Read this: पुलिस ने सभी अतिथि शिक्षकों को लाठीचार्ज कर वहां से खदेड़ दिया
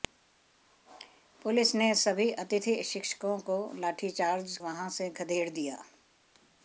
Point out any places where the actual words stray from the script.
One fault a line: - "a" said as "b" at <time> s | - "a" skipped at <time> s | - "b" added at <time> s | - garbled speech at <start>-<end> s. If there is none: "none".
- "कर" skipped at 4.6 s